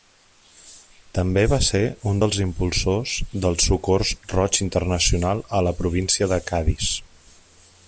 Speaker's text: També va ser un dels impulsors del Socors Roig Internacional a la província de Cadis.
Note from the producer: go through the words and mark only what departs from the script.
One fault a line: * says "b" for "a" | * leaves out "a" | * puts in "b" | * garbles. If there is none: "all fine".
all fine